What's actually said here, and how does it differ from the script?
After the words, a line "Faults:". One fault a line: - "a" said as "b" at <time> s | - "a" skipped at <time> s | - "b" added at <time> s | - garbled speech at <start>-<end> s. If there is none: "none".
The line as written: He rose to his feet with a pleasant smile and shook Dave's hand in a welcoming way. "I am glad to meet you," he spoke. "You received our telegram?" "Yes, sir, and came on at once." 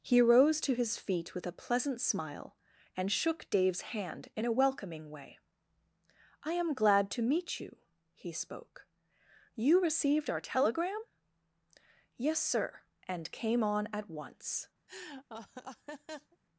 He rose to his feet with a pleasant smile and shook Dave's hand in a welcoming way. "I am glad to meet you," he spoke. "You received our telegram?" "Yes, sir, and came on at once."
Faults:
none